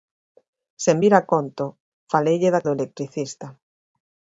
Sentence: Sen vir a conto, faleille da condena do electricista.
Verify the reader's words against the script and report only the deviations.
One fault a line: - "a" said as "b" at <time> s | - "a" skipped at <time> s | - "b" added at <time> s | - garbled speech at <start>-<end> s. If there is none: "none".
- "condena" skipped at 2.6 s